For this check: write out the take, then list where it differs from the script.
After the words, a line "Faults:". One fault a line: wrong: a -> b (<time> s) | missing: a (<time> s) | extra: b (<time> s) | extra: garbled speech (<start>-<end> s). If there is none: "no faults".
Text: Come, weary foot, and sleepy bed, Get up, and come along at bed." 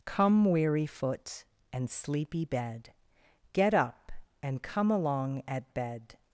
Come, weary foot, and sleepy bed, Get up, and come along at bed."
Faults:
no faults